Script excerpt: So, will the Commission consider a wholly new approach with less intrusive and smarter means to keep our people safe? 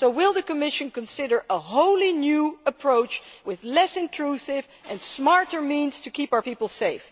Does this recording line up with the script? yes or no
yes